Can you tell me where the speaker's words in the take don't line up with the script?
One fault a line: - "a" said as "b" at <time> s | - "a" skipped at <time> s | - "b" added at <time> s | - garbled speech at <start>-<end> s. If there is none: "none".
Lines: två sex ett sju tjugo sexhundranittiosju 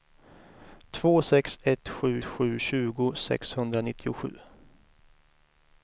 - "sju" added at 2.2 s